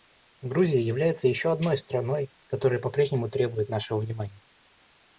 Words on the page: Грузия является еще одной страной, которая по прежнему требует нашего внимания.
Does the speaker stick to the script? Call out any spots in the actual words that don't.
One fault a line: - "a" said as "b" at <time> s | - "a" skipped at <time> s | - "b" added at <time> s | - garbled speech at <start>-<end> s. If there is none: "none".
none